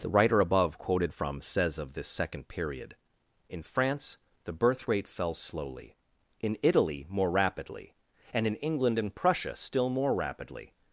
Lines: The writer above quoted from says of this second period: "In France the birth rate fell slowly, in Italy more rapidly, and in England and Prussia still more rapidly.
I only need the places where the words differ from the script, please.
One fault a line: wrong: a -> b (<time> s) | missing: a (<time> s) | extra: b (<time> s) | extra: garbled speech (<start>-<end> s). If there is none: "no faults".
no faults